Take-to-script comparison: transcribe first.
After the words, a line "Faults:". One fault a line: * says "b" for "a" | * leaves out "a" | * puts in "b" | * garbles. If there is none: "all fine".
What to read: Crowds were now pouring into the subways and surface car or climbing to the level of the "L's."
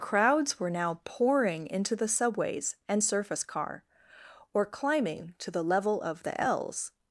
Crowds were now pouring into the subways and surface car or climbing to the level of the "L's."
Faults:
all fine